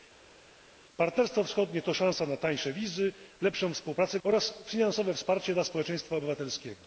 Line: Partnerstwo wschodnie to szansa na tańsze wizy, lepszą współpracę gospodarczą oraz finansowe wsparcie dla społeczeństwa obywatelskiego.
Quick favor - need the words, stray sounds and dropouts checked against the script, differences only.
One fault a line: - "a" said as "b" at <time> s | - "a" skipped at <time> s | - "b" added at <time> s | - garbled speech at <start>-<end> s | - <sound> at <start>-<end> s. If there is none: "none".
- "gospodarczą" skipped at 4.2 s